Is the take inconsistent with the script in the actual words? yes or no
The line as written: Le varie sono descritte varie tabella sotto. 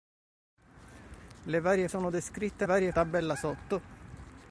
no